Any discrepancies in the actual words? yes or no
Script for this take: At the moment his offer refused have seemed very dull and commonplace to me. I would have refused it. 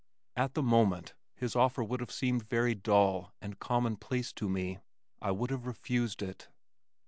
yes